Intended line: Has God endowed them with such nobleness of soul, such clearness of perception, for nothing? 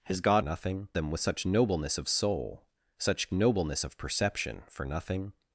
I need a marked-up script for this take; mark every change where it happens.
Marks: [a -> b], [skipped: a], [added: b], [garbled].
Has God [endowed -> nothing] them with such nobleness of soul, such [clearness -> nobleness] of perception, for nothing?